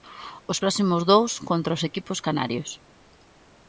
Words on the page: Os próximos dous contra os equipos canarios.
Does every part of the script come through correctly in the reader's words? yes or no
yes